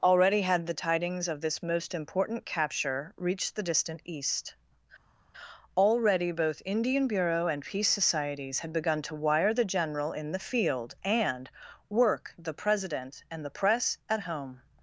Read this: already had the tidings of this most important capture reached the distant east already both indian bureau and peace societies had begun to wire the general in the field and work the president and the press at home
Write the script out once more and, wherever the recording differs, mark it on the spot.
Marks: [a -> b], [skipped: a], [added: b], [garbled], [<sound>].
already had the tidings of this most important capture reached the distant east already both indian bureau and peace societies had begun to wire the general in the field and work the president and the press at home